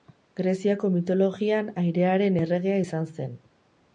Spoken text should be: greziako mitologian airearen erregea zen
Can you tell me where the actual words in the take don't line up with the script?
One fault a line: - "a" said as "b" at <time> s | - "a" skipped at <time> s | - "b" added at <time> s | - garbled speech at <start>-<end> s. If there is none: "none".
- "izan" added at 2.8 s